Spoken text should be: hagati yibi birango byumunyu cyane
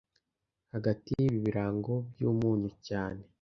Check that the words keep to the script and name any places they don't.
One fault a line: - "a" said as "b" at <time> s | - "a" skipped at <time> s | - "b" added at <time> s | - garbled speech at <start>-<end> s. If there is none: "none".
none